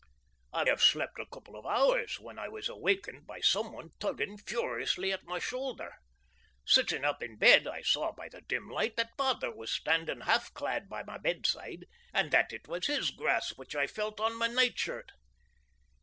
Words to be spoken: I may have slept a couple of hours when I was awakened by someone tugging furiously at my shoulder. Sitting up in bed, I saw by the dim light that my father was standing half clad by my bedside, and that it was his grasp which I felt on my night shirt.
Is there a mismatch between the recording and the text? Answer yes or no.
yes